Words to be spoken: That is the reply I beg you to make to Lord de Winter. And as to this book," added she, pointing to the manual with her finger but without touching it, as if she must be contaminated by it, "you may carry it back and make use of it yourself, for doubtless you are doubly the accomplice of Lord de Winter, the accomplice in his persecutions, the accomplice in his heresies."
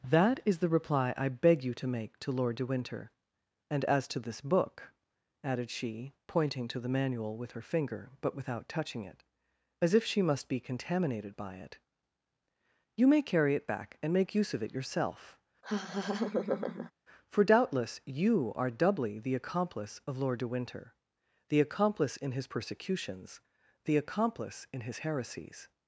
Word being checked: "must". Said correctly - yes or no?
yes